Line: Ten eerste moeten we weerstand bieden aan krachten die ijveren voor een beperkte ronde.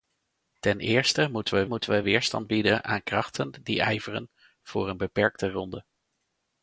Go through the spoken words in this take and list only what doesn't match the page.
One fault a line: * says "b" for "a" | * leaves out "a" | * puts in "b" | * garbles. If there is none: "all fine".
* puts in "moeten we"